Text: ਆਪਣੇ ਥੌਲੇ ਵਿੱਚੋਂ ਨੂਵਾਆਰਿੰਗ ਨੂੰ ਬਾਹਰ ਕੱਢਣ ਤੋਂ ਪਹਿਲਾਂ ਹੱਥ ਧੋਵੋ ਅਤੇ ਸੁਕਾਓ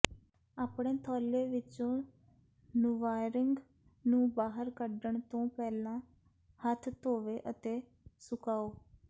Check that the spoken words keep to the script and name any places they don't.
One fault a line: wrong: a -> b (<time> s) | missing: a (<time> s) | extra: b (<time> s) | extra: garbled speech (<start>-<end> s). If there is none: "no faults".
no faults